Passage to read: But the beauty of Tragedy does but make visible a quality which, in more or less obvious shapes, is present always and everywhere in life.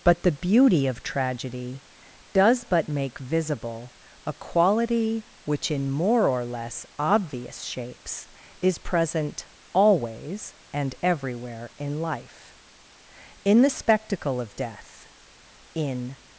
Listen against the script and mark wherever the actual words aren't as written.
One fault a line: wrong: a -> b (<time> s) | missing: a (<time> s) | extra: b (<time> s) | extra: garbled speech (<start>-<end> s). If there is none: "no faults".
extra: In the spectacle of Death in (13.5 s)